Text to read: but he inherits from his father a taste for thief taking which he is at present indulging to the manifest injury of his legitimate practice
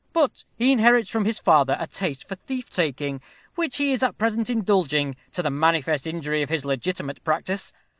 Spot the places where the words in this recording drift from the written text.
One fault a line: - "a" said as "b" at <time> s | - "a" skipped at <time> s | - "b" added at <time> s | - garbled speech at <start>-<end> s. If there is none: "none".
none